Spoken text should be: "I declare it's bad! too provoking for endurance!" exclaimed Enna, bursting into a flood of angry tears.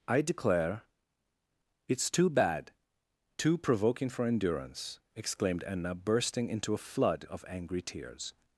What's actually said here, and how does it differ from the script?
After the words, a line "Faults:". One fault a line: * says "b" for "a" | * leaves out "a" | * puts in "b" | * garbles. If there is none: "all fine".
"I declare it's too bad! too provoking for endurance!" exclaimed Enna, bursting into a flood of angry tears.
Faults:
* puts in "too"